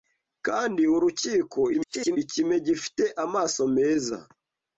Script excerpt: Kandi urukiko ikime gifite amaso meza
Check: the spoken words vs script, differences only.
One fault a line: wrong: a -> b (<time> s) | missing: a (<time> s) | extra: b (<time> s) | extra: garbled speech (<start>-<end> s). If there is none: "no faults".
extra: garbled speech (1.7-2.2 s)